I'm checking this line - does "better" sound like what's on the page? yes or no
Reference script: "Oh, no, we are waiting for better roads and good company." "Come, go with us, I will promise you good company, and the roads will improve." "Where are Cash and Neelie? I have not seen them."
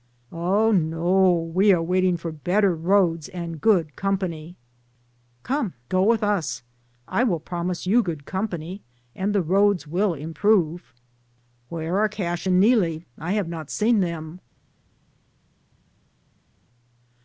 yes